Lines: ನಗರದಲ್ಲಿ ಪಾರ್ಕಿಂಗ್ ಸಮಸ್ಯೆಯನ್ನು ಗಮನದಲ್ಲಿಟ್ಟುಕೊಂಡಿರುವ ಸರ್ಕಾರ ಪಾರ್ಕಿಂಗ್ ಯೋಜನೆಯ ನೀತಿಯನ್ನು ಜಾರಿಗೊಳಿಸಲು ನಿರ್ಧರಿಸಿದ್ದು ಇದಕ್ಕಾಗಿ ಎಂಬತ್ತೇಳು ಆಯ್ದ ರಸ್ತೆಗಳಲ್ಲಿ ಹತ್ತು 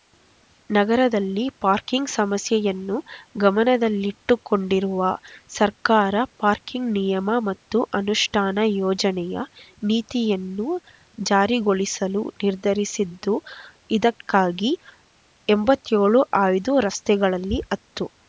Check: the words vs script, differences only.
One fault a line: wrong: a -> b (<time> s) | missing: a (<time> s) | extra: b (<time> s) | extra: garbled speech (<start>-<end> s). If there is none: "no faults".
extra: ನಿಯಮ ಮತ್ತು ಅನುಷ್ಠಾನ (7.0 s)